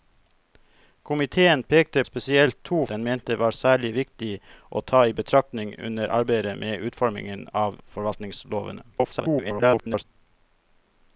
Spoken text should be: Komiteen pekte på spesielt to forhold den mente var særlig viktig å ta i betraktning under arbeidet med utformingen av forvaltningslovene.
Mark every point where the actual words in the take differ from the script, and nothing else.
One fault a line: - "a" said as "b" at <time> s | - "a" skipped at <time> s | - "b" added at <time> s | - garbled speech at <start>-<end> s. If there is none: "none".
- "på" skipped at 2.0 s
- "forhold" skipped at 2.9 s
- garbled speech at 8.9-10.0 s